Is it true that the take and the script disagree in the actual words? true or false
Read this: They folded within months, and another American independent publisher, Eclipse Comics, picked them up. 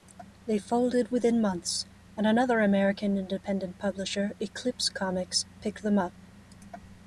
false